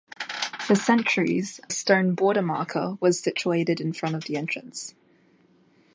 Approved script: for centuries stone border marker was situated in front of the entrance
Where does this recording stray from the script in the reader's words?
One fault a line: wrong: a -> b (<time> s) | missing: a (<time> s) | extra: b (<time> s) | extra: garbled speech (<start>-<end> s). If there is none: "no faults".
no faults